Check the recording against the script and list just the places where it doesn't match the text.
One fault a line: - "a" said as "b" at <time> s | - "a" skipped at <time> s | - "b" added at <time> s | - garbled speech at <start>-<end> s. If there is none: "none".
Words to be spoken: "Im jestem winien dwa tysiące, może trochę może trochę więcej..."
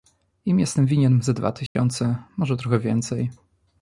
- "ze" added at 1.2 s
- "może trochę" skipped at 2.8 s